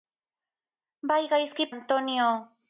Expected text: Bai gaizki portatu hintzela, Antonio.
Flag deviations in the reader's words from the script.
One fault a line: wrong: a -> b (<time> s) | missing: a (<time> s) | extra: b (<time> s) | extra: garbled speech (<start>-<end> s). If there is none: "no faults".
missing: portatu hintzela (1.7 s)